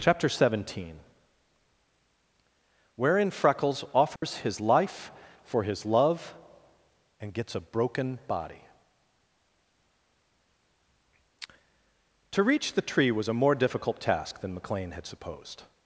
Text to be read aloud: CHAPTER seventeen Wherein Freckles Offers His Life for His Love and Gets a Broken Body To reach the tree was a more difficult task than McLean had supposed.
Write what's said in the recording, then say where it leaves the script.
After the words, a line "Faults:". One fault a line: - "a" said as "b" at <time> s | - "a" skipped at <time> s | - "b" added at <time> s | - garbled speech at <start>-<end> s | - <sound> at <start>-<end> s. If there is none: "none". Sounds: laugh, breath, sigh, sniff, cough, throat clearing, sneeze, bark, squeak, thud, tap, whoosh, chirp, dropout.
CHAPTER seventeen Wherein Freckles Offers His Life for His Love and Gets a Broken Body To reach the tree was a more difficult task than McLean had supposed.
Faults:
- dropout at 4.2-4.2 s